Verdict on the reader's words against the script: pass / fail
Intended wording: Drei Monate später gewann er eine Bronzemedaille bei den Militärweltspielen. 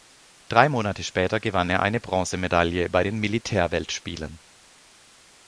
pass